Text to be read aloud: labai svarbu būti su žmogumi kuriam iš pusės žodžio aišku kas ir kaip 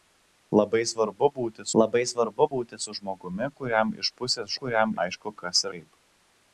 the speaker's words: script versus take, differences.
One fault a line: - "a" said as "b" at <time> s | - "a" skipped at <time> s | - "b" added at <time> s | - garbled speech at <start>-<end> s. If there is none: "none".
- "labai svarbu būti" added at 1.8 s
- "žodžio" said as "kuriam" at 4.6 s
- "ir" skipped at 5.7 s